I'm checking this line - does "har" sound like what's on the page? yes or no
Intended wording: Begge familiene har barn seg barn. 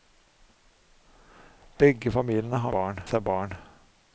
yes